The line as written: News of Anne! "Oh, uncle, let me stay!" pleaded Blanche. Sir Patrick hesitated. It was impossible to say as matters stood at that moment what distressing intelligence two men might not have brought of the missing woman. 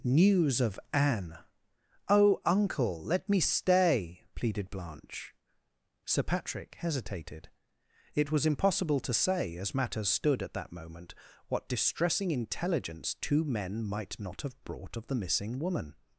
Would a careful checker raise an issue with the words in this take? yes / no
no